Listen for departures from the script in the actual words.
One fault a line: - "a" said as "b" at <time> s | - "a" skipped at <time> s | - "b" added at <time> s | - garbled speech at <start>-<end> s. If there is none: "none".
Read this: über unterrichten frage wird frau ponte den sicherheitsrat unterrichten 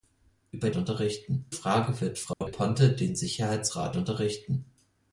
none